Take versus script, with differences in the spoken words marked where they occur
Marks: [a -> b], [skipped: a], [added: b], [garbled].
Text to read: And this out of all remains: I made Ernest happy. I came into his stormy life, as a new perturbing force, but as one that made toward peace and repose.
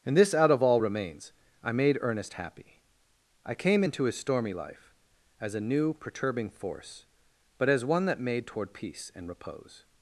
And this out of all remains: I made Ernest happy. I came into his stormy life, as a new perturbing force, but as one that made toward peace and repose.